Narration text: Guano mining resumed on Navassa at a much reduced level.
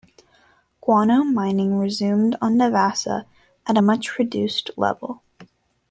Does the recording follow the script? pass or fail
pass